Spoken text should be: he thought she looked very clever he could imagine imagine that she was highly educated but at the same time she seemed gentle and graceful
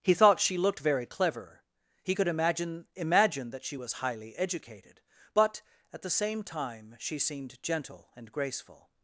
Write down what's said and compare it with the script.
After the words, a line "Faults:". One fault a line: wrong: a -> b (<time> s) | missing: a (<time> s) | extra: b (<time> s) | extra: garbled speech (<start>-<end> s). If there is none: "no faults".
he thought she looked very clever he could imagine imagine that she was highly educated but at the same time she seemed gentle and graceful
Faults:
no faults